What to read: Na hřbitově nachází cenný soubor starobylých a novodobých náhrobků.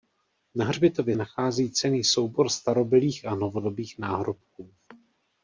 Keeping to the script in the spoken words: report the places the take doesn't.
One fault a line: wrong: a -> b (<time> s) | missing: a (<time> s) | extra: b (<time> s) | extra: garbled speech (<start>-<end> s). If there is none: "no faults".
no faults